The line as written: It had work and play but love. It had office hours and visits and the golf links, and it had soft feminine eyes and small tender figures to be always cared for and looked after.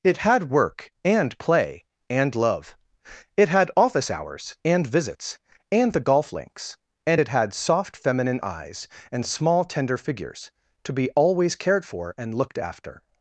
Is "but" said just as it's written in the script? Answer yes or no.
no